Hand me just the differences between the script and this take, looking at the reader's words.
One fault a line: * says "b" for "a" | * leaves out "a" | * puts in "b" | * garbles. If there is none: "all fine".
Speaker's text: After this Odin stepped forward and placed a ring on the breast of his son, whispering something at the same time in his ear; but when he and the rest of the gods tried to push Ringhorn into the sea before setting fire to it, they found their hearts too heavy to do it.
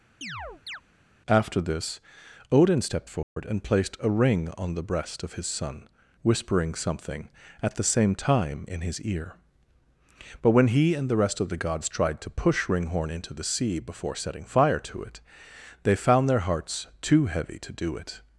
all fine